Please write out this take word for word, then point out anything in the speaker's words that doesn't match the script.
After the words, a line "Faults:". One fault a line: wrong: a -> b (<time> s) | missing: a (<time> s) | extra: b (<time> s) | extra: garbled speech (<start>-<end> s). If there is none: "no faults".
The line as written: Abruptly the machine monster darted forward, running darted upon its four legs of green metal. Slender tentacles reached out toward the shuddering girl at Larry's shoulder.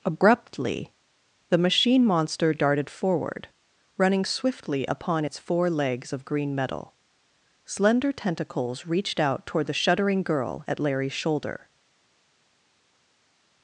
Abruptly the machine monster darted forward, running swiftly upon its four legs of green metal. Slender tentacles reached out toward the shuddering girl at Larry's shoulder.
Faults:
wrong: darted -> swiftly (4.2 s)